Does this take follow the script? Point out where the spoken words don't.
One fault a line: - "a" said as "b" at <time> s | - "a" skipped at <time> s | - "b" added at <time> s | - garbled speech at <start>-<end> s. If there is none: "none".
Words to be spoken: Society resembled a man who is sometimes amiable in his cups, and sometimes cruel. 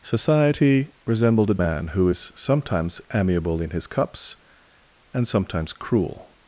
none